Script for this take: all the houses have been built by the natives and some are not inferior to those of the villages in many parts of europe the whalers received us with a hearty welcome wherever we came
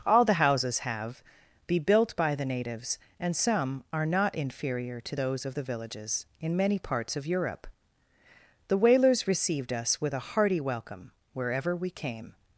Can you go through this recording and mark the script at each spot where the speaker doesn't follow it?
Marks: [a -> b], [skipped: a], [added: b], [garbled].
all the houses have [been -> be] built by the natives and some are not inferior to those of the villages in many parts of europe the whalers received us with a hearty welcome wherever we came